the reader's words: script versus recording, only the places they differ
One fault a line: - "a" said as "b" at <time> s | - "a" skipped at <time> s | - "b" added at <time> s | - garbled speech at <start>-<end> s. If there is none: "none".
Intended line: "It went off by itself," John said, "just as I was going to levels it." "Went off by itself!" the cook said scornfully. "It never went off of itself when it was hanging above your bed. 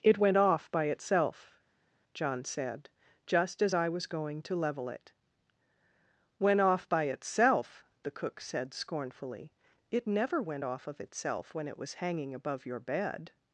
- "levels" said as "level" at 4.6 s